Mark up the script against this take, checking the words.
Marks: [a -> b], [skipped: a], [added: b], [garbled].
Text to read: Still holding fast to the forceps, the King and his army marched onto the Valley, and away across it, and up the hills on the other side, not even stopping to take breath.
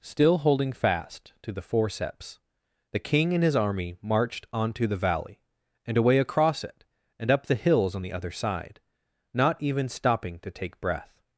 Still holding fast to the forceps, the King and his army marched onto the Valley, and away across it, and up the hills on the other side, not even stopping to take breath.